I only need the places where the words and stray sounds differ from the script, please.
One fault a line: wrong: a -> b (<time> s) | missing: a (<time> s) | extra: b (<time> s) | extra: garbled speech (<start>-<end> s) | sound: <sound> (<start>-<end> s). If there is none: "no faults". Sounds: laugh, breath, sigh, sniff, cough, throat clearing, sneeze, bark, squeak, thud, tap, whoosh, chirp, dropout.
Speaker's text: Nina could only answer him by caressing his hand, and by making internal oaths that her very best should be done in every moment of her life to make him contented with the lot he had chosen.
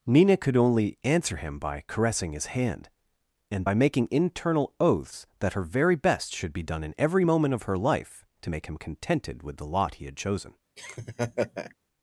sound: laugh (10.8-11.7 s)